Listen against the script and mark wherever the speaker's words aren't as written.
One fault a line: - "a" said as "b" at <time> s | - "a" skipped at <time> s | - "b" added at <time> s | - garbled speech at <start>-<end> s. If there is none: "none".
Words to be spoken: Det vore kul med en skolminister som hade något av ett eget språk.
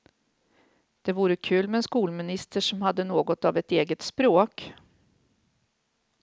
none